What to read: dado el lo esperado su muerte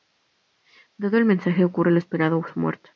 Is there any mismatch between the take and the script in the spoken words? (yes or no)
yes